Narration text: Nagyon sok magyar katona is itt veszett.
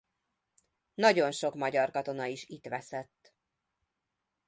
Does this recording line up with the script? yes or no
yes